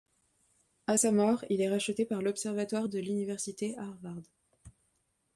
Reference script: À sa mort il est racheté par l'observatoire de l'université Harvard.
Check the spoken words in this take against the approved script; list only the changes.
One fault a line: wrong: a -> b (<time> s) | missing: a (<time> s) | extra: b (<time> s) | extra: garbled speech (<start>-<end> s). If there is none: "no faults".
no faults